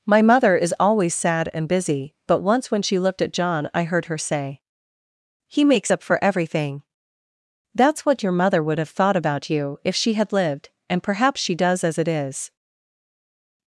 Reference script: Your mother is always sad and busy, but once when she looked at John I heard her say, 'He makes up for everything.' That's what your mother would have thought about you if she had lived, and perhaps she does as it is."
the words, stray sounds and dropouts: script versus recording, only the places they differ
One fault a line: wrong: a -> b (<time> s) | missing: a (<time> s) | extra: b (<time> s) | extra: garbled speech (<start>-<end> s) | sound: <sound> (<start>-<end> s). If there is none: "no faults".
wrong: Your -> My (0.1 s)